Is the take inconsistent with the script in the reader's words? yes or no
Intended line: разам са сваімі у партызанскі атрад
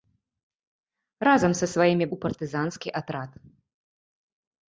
no